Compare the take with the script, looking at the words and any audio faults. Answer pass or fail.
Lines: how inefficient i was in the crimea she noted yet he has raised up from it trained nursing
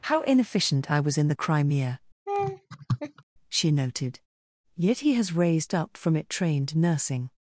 fail